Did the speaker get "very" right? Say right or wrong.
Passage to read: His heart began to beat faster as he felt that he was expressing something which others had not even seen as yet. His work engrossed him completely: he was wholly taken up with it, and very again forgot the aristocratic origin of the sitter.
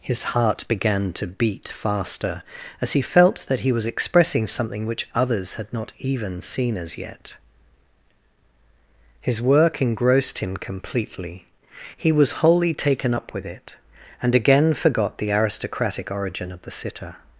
wrong